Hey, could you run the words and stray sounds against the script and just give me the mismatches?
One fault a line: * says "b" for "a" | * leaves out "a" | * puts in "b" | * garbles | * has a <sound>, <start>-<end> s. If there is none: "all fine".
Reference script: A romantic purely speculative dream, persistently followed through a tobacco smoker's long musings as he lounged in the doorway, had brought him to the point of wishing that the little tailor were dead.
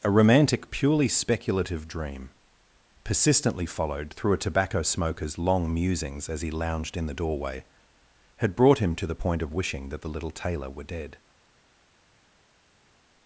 all fine